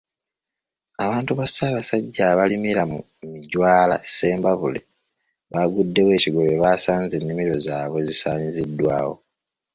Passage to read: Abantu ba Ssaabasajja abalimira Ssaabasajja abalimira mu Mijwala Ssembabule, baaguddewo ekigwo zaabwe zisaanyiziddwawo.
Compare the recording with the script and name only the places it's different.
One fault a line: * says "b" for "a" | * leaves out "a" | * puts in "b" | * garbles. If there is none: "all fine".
* leaves out "Ssaabasajja abalimira"
* puts in "bwe baasanze ennimiro"